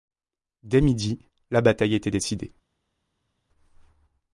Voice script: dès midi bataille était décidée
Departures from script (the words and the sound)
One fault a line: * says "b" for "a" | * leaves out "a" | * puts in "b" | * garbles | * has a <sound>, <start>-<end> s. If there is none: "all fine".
* puts in "la"